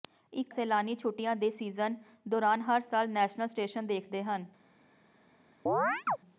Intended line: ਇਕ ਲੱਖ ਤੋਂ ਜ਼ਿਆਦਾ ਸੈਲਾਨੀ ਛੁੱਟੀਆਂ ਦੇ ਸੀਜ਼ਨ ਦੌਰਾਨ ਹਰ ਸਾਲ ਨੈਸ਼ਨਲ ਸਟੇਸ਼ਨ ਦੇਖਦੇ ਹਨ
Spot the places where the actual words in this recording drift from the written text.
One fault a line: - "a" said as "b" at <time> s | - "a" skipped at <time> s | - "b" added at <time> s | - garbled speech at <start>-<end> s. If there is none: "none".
- "ਲੱਖ ਤੋਂ ਜ਼ਿਆਦਾ" skipped at 0.5 s